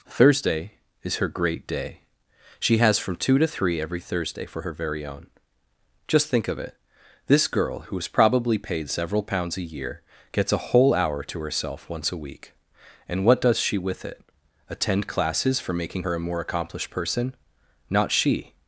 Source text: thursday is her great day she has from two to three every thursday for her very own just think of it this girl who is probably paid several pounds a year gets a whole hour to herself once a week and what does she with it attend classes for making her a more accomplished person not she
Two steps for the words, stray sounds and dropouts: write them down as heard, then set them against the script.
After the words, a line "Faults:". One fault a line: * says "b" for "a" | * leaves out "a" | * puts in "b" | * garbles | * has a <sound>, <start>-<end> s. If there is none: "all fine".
thursday is her great day she has from two to three every thursday for her very own just think of it this girl who is probably paid several pounds a year gets a whole hour to herself once a week and what does she with it attend classes for making her a more accomplished person not she
Faults:
all fine